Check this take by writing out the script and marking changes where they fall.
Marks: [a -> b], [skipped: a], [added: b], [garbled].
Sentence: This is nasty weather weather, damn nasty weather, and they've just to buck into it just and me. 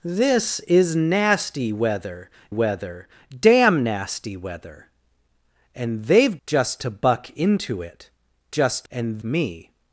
This is nasty weather weather, damn nasty weather, and they've just to buck into it just and me.